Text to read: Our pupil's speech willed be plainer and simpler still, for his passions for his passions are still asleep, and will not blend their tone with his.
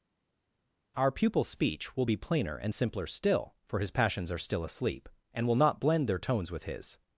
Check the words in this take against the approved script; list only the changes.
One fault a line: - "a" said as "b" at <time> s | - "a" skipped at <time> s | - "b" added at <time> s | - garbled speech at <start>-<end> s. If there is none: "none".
- "willed" said as "will" at 2.0 s
- "for his passions" skipped at 4.3 s
- "tone" said as "tones" at 6.2 s